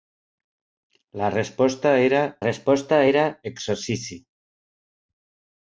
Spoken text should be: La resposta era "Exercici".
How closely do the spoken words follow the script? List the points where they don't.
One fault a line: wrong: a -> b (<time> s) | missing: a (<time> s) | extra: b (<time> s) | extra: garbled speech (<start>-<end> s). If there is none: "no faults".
extra: resposta era (2.4 s)